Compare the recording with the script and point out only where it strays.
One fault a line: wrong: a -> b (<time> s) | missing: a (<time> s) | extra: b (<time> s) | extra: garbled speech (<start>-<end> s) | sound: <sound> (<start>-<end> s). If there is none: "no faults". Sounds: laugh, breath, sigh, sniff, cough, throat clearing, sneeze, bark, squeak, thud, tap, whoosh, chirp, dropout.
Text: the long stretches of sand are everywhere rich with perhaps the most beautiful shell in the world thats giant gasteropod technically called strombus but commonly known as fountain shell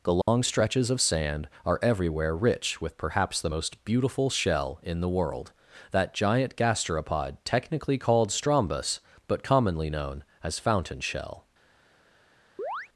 sound: dropout (0.2-0.3 s)
wrong: thats -> that (5.9 s)
sound: chirp (12.6-12.9 s)